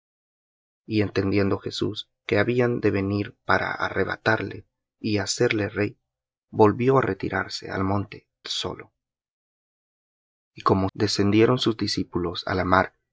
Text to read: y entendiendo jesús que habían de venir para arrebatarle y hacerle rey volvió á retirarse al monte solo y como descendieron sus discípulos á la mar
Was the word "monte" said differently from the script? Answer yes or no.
no